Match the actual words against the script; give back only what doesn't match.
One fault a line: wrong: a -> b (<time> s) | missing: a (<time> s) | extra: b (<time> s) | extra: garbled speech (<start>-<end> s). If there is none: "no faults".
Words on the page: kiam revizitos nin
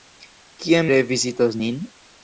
no faults